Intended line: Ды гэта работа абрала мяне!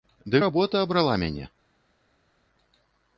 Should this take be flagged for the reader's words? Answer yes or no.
yes